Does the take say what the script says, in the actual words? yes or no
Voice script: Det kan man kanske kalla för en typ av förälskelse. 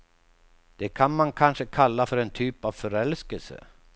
yes